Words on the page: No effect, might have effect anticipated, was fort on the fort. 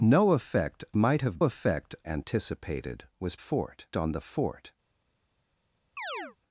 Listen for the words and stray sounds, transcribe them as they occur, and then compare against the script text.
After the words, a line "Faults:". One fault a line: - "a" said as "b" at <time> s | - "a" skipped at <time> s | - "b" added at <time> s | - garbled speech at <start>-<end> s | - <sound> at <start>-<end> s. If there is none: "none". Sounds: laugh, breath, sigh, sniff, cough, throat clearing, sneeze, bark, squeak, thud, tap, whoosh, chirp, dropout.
No effect, might have effect anticipated, was fort on the fort.
Faults:
- chirp at 6.0-6.4 s